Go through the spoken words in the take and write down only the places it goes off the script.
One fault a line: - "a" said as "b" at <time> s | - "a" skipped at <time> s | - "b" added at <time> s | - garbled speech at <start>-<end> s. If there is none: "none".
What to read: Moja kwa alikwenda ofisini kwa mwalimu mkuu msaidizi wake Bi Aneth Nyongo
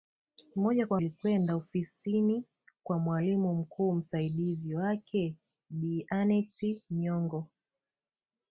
none